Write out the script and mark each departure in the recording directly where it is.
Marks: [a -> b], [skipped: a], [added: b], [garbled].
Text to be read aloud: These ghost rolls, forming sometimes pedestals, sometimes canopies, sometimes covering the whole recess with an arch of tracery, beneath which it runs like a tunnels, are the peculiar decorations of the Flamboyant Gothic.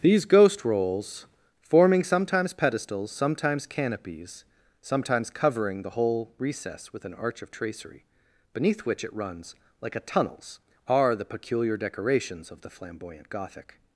These ghost rolls, forming sometimes pedestals, sometimes canopies, sometimes covering the whole recess with an arch of tracery, beneath which it runs like a tunnels, are the peculiar decorations of the Flamboyant Gothic.